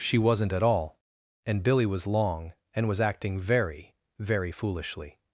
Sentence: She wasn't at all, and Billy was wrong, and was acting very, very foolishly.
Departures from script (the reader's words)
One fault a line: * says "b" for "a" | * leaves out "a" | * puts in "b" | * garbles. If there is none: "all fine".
* says "long" for "wrong"